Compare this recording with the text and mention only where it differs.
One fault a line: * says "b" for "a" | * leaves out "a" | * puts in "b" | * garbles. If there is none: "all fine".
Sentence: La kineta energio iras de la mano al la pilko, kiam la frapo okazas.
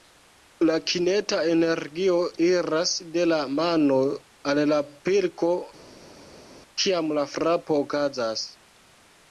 all fine